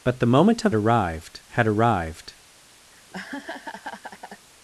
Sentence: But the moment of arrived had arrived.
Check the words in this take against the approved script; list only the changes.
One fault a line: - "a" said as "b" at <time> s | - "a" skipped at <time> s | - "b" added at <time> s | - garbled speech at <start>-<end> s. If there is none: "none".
none